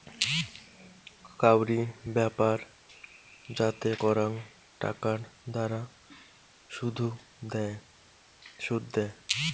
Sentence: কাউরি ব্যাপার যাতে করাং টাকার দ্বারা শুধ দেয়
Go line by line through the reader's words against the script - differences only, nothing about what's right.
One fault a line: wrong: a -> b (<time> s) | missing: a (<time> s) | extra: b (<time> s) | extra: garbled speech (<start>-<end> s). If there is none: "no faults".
no faults